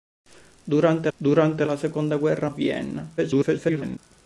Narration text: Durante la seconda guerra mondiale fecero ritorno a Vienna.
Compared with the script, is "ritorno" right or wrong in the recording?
wrong